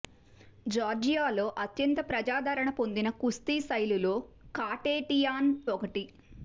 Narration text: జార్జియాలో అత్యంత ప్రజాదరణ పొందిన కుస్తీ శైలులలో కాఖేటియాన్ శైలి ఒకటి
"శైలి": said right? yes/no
no